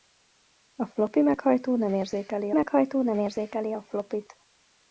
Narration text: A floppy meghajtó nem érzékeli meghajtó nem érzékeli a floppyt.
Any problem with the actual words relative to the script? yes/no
no